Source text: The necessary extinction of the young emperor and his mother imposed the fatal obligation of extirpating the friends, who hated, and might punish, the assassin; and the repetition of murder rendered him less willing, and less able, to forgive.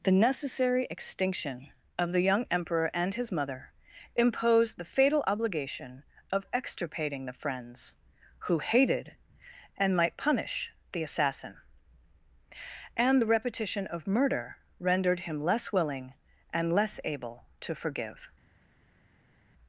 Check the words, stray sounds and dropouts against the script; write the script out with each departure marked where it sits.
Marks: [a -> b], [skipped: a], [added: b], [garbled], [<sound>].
The necessary extinction of the young emperor and his mother imposed the fatal obligation of extirpating the friends, who hated, and might punish, the assassin; and the repetition of murder rendered him less willing, and less able, to forgive.